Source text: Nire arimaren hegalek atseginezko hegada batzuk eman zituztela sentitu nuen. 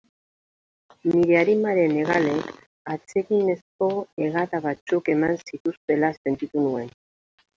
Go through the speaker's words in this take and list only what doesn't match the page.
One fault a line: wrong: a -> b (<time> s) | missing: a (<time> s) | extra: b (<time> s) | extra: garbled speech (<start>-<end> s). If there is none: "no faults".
no faults